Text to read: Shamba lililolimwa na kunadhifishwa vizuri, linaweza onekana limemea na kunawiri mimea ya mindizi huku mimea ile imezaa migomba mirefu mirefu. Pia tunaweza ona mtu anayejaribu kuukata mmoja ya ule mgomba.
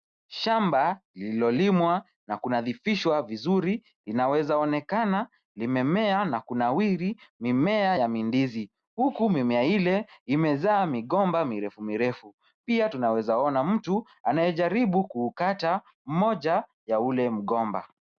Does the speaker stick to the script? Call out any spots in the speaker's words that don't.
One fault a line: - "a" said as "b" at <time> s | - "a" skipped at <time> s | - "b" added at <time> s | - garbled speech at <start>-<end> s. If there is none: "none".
none